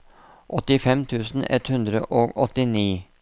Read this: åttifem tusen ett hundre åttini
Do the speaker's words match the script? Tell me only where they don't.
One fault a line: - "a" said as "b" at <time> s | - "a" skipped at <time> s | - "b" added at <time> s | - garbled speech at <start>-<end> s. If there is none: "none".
- "og" added at 2.2 s